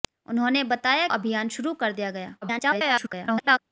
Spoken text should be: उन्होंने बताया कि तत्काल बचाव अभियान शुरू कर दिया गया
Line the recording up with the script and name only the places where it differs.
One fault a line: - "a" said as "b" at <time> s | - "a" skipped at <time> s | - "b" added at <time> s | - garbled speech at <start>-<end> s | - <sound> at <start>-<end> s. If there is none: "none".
- "कि तत्काल बचाव" skipped at 1.1 s
- garbled speech at 2.4-3.6 s